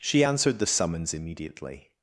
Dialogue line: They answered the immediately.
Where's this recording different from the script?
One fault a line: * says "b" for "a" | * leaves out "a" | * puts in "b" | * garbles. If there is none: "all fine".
* says "She" for "They"
* puts in "summons"